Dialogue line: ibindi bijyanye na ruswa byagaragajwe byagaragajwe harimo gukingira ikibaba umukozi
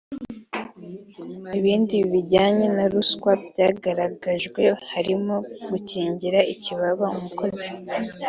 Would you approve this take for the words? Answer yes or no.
no